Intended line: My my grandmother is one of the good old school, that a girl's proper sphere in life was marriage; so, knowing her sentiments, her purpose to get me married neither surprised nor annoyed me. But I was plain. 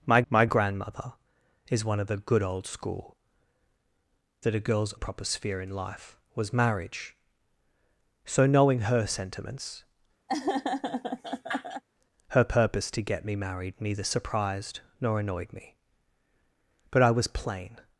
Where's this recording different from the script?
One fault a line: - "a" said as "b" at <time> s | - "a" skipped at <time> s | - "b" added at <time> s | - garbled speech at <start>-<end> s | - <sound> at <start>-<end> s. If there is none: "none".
- laugh at 10.3-11.8 s